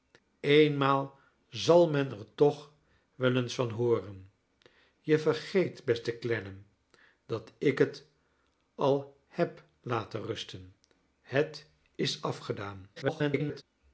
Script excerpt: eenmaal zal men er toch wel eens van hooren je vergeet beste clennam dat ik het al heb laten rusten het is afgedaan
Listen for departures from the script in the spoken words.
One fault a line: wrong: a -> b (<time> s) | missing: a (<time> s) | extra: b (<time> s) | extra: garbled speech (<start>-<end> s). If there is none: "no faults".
extra: garbled speech (13.0-13.6 s)